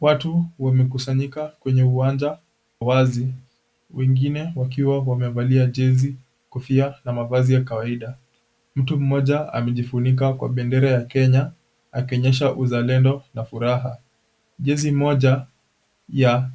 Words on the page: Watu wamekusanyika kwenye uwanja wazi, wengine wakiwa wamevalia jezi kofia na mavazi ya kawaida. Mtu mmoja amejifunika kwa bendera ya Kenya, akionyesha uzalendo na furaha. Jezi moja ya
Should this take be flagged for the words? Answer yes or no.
no